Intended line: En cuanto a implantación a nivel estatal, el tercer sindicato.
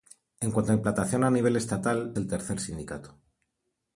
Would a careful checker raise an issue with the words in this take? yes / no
no